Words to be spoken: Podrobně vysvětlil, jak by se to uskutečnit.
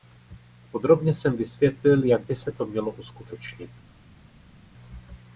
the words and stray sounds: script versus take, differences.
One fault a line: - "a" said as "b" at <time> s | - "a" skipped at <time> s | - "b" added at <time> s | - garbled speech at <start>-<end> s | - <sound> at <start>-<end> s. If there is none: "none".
- "jsem" added at 1.1 s
- "mělo" added at 2.6 s